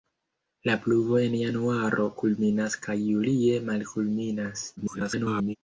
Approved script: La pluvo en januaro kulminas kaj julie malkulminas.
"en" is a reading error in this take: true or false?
false